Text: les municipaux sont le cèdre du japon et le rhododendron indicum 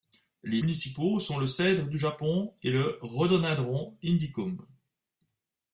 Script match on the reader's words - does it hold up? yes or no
yes